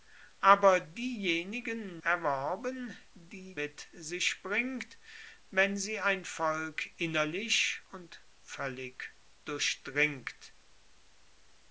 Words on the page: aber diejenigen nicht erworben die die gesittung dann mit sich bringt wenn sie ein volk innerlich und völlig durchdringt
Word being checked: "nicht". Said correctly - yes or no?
no